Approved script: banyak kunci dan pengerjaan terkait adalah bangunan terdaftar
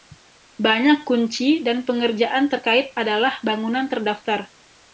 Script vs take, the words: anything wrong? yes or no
no